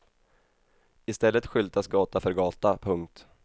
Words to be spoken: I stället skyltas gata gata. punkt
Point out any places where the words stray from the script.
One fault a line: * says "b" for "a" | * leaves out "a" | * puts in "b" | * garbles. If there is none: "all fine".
* puts in "för"